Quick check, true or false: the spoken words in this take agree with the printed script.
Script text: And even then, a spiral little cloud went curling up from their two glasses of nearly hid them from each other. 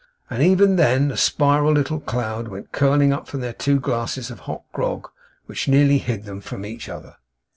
false